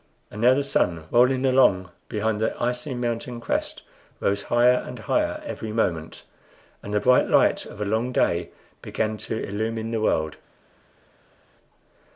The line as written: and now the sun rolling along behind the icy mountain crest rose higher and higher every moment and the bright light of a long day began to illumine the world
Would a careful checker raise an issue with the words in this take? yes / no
no